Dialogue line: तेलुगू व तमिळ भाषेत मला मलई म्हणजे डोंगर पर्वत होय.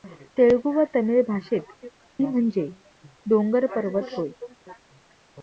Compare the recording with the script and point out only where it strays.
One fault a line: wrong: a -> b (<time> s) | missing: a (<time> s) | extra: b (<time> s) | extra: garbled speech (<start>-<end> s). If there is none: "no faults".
missing: मला मलई (1.9 s)